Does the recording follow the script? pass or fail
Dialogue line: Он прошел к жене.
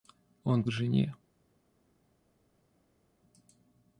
fail